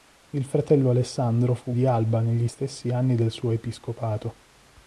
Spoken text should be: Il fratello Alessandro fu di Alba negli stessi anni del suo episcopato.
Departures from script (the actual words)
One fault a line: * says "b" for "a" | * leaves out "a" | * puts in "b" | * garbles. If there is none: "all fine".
all fine